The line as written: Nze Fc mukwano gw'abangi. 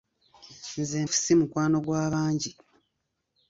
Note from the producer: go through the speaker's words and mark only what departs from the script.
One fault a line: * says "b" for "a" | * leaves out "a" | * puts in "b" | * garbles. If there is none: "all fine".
all fine